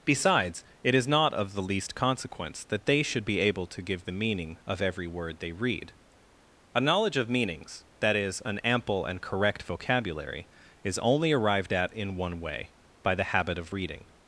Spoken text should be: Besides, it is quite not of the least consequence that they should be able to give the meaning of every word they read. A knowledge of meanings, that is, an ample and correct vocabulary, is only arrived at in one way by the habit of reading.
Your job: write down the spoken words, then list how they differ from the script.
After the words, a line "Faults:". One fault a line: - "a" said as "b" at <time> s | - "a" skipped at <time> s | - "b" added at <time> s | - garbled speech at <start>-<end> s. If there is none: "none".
Besides, it is not of the least consequence that they should be able to give the meaning of every word they read. A knowledge of meanings, that is, an ample and correct vocabulary, is only arrived at in one way by the habit of reading.
Faults:
- "quite" skipped at 1.1 s